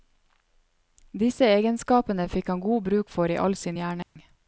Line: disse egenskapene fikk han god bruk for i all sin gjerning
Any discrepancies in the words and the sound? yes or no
yes